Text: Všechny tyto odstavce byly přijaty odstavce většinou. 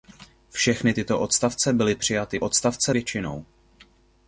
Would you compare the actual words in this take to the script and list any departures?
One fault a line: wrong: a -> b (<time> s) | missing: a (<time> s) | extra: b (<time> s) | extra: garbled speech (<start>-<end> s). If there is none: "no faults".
no faults